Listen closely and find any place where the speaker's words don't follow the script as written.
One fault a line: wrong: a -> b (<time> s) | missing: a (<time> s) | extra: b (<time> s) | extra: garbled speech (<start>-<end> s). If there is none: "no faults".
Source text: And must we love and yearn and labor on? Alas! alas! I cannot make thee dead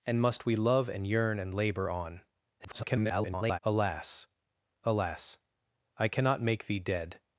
extra: garbled speech (2.6-3.6 s)